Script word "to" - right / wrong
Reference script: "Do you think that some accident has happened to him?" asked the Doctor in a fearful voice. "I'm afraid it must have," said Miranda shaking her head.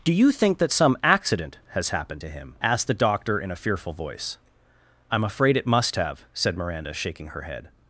right